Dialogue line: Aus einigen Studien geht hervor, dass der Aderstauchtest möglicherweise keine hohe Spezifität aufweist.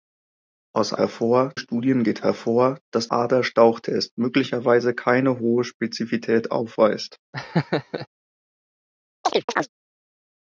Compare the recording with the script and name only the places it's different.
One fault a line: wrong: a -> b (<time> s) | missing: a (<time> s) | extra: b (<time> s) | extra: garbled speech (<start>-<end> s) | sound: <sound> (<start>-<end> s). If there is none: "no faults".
wrong: einigen -> hervor (1.0 s)
missing: der (3.1 s)
sound: laugh (7.3-8.1 s)
sound: chirp (9.2-9.7 s)